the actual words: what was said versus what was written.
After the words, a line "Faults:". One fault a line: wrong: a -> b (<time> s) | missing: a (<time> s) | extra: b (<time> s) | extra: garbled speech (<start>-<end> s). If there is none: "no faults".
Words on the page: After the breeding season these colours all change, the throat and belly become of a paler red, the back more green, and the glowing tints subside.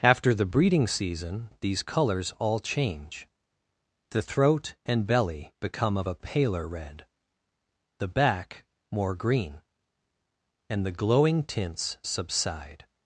After the breeding season these colours all change, the throat and belly become of a paler red, the back more green, and the glowing tints subside.
Faults:
no faults